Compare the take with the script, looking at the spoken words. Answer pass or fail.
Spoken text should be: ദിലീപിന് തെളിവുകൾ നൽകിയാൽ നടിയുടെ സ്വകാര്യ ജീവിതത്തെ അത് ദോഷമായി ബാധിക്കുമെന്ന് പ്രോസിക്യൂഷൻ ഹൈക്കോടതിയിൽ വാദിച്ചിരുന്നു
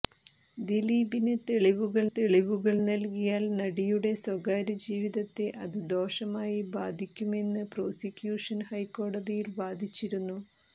fail